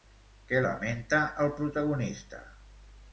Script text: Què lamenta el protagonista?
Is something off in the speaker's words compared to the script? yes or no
no